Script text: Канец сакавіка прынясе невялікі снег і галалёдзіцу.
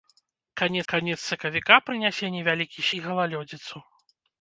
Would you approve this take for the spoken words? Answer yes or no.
no